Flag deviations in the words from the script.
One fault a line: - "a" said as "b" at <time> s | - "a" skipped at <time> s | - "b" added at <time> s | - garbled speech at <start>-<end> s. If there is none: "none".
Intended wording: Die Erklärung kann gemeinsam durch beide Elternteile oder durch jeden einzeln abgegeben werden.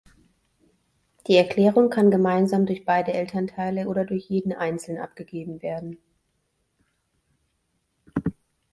none